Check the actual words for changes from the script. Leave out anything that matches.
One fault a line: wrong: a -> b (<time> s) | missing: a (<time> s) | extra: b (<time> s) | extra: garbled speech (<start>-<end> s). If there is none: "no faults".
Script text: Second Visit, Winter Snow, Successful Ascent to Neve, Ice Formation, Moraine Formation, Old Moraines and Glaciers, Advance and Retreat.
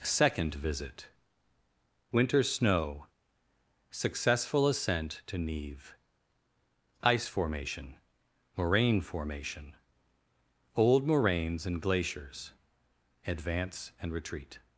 no faults